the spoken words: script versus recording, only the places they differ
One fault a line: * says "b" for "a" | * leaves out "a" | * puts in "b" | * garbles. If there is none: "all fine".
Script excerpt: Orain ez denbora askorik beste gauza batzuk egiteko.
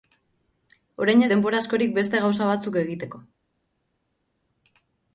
all fine